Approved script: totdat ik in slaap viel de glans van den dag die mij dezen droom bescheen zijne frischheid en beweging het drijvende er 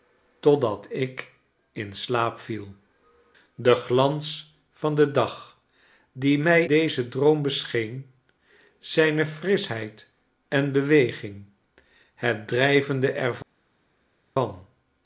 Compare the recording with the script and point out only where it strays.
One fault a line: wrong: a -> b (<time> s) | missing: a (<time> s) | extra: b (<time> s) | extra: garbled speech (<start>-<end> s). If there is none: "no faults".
no faults